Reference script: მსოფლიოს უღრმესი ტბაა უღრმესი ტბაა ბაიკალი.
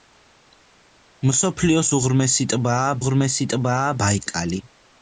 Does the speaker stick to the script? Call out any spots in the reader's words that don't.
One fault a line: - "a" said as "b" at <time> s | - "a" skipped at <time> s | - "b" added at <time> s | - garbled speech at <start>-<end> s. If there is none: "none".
none